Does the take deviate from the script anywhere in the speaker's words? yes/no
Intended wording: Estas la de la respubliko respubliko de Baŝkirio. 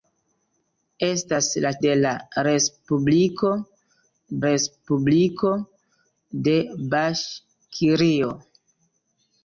no